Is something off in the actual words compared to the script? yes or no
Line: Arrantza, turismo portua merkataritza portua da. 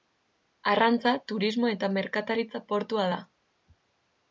yes